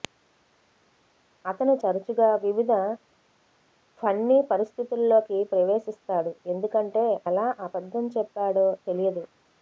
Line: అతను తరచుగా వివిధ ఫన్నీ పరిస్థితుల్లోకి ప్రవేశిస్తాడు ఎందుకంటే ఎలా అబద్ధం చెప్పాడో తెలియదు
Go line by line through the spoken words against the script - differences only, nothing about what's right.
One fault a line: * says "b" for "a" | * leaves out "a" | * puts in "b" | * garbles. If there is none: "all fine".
all fine